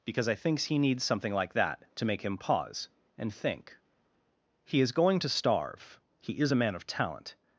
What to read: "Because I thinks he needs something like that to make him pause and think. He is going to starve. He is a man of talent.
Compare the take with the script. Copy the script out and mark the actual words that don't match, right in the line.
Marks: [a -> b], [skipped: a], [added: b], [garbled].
"Because I thinks he needs something like that to make him pause and think. He is going to starve. He is a man of talent.